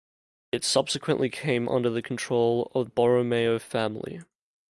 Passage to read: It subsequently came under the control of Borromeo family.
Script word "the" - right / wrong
right